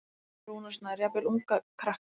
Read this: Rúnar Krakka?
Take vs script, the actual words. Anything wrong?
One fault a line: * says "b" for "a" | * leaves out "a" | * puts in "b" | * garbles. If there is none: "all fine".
* puts in "Snær Jafnvel unga"